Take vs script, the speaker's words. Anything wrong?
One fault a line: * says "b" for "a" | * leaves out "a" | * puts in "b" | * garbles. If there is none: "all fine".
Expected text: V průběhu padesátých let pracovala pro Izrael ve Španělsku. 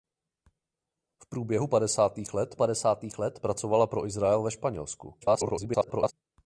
* puts in "padesátých let"
* garbles